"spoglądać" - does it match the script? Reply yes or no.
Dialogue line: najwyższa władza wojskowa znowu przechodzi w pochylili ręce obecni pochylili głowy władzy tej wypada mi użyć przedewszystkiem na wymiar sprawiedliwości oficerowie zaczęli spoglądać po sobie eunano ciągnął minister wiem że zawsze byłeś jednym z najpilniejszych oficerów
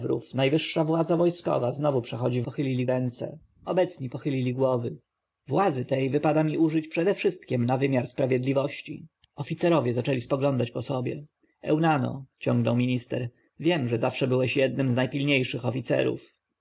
yes